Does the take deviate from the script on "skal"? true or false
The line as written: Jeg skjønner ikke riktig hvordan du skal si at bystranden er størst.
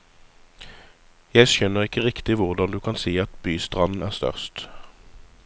true